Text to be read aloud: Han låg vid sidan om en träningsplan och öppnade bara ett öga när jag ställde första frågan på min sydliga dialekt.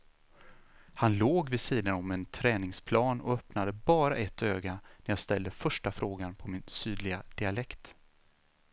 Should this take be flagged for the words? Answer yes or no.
no